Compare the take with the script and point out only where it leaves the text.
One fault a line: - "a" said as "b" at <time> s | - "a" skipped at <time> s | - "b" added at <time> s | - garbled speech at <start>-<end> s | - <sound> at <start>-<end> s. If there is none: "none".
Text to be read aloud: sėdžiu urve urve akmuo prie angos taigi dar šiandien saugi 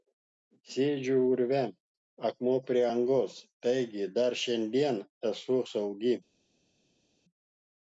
- "urve" skipped at 1.6 s
- "esu" added at 5.3 s